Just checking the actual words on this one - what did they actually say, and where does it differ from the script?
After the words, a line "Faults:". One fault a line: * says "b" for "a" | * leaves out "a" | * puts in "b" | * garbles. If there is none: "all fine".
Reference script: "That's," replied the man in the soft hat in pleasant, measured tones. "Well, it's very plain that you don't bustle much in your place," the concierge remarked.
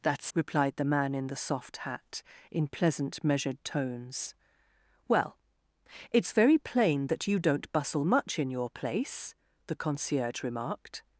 "That's," replied the man in the soft hat in pleasant, measured tones. "Well, it's very plain that you don't bustle much in your place," the concierge remarked.
Faults:
all fine